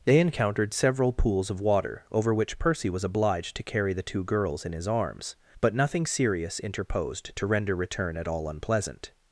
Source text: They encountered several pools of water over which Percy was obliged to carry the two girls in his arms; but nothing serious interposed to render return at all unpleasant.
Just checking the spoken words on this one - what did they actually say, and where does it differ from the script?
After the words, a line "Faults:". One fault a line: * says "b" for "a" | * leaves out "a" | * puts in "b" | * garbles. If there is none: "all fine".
They encountered several pools of water over which Percy was obliged to carry the two girls in his arms; but nothing serious interposed to render return at all unpleasant.
Faults:
all fine